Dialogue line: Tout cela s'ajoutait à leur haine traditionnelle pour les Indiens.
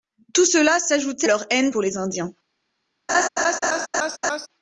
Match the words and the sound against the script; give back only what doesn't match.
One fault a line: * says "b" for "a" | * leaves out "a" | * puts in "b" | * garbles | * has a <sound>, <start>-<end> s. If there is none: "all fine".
* leaves out "à"
* leaves out "traditionnelle"
* has a laugh, 3.1-4.5 s